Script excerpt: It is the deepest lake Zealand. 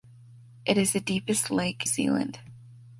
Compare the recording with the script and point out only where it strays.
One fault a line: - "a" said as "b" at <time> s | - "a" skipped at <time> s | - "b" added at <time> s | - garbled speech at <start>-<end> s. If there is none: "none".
none